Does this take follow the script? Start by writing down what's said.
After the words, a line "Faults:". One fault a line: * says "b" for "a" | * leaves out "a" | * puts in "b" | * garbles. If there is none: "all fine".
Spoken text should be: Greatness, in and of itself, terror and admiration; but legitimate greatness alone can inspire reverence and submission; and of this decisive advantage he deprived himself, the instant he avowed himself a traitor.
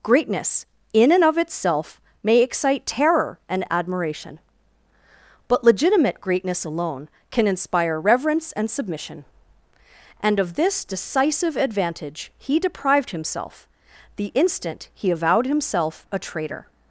Greatness, in and of itself, may excite terror and admiration; but legitimate greatness alone can inspire reverence and submission; and of this decisive advantage he deprived himself, the instant he avowed himself a traitor.
Faults:
* puts in "may excite"